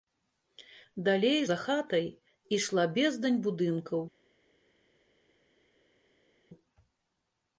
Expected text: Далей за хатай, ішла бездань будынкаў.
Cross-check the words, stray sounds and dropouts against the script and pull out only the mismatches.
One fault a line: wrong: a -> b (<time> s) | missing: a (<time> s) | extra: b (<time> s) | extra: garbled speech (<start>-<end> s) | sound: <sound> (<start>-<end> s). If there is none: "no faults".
no faults